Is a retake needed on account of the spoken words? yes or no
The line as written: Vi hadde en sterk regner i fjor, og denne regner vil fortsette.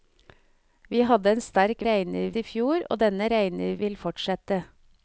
no